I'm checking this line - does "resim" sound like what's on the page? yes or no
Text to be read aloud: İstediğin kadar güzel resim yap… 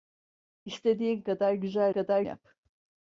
no